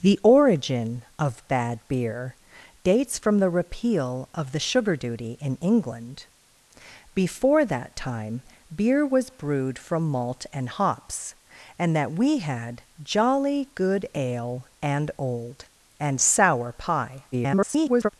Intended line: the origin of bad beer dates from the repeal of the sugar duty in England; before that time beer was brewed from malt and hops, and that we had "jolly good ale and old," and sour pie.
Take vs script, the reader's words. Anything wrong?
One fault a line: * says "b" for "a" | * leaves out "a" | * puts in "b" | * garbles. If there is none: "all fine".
* garbles